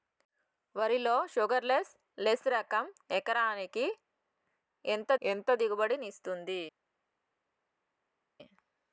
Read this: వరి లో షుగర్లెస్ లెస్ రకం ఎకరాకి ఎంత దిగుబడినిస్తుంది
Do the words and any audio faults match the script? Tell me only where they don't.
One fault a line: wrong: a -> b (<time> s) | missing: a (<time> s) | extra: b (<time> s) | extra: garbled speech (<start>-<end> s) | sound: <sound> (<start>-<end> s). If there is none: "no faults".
extra: ఎంత (5.2 s)